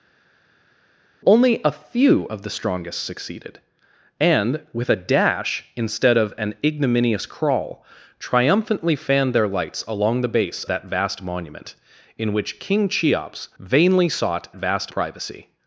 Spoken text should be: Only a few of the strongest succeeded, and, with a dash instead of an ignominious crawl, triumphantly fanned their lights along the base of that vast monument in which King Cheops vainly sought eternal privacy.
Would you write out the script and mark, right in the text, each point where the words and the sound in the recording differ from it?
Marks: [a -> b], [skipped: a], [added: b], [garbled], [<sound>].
Only a few of the strongest succeeded, and, with a dash instead of an ignominious crawl, triumphantly fanned their lights along the base [skipped: of] that vast monument in which King Cheops vainly sought [eternal -> vast] privacy.